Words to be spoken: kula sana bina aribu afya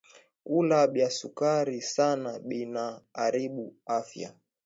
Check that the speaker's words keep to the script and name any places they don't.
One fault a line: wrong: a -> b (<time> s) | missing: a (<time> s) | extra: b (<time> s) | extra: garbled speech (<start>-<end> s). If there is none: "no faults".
extra: bya sukari (0.9 s)